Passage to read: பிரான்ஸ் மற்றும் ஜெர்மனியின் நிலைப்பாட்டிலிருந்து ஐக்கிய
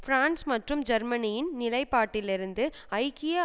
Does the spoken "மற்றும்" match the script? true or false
true